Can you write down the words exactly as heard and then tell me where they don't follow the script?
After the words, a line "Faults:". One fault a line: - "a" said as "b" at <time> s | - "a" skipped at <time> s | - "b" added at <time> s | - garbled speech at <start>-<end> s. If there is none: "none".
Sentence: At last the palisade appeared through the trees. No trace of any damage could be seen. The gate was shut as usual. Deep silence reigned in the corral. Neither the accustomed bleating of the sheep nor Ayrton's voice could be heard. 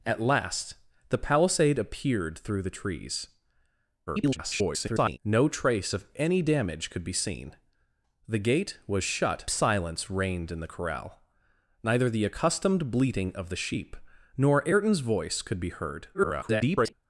At last the palisade appeared through the trees. [garbled] No trace of any damage could be seen. The gate was shut silence reigned in the corral. Neither the accustomed bleating of the sheep nor Ayrton's voice could be heard. [garbled]
Faults:
- garbled speech at 4.1-5.2 s
- "as usual Deep" skipped at 9.5 s
- garbled speech at 16.1-16.9 s